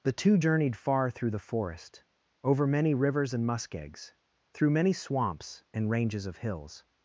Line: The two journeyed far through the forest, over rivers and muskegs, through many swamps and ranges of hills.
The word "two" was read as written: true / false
true